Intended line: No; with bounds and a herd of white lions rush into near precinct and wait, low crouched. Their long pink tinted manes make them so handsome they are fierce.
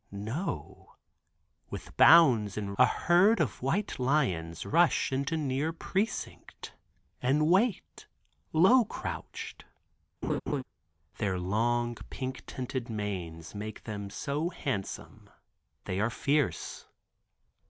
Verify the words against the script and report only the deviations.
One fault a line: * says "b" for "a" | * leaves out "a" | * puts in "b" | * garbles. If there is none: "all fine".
all fine